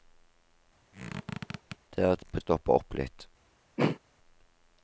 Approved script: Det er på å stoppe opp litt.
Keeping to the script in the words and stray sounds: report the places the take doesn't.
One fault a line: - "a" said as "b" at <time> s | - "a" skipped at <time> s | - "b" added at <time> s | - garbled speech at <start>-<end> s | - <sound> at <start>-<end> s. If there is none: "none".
- squeak at 0.9-1.8 s
- throat clearing at 3.8-4.0 s